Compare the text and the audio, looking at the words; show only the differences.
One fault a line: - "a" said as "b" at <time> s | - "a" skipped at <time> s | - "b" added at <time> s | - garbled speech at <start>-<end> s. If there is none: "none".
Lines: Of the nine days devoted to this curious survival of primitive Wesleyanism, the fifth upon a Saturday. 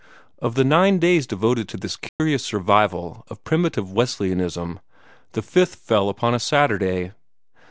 - "fell" added at 5.8 s